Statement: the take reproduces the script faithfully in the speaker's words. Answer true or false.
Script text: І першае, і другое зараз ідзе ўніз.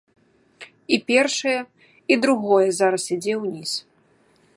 true